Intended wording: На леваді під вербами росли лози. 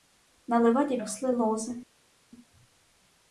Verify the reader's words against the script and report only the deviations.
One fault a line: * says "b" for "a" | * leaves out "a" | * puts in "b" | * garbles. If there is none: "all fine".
* leaves out "під вербами"